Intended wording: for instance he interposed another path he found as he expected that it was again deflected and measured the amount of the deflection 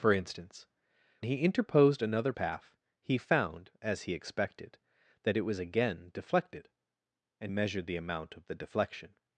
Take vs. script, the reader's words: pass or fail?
pass